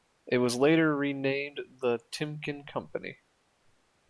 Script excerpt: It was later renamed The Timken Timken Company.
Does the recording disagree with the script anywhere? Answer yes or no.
yes